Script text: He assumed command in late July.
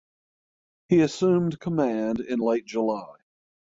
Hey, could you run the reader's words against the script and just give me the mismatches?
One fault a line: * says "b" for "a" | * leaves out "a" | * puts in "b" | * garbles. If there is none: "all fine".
all fine